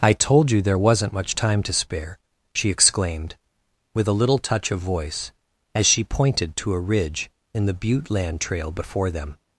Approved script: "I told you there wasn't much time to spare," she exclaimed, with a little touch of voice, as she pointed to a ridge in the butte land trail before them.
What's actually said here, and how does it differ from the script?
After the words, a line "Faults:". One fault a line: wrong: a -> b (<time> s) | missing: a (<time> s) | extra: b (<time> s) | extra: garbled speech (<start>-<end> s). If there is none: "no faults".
"I told you there wasn't much time to spare," she exclaimed, with a little touch of voice, as she pointed to a ridge in the butte land trail before them.
Faults:
no faults